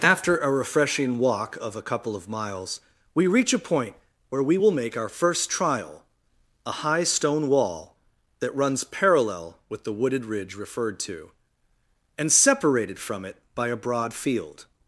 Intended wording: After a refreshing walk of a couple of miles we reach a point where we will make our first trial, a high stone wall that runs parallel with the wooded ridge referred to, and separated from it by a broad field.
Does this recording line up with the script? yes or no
yes